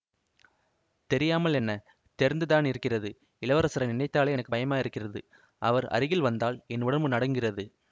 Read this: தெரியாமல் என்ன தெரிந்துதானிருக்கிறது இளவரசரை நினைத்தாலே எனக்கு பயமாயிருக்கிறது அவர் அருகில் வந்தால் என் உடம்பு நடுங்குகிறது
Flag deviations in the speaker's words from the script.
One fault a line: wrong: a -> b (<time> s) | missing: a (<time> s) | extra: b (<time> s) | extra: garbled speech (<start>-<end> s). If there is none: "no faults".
no faults